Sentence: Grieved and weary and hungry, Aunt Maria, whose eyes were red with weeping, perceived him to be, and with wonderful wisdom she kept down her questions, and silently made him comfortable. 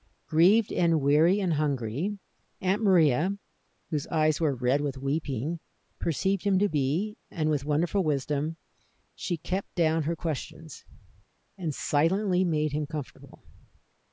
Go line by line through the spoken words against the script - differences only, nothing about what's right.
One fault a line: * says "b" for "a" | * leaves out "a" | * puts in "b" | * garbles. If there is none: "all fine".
all fine